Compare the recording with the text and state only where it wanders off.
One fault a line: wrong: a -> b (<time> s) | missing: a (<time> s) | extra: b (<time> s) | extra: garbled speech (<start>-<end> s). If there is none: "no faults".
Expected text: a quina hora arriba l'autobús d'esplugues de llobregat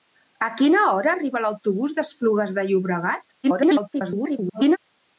extra: garbled speech (3.4-4.8 s)